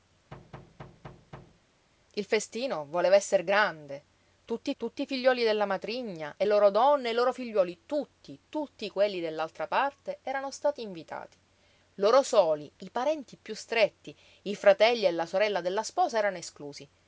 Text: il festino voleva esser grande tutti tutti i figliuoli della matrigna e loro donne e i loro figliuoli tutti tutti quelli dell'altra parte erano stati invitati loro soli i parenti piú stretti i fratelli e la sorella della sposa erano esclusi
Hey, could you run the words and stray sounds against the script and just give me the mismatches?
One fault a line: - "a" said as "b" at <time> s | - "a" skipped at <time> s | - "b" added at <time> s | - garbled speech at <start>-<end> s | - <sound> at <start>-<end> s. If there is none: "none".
- thud at 0.3-1.6 s